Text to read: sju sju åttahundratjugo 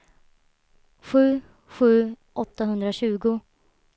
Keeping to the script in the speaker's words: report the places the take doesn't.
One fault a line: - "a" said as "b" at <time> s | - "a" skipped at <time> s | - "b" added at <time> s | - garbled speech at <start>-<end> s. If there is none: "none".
none